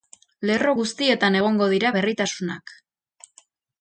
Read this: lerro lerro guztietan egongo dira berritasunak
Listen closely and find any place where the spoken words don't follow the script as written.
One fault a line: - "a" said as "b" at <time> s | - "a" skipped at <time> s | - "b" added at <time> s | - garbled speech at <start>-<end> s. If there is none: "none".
- "lerro" skipped at 0.7 s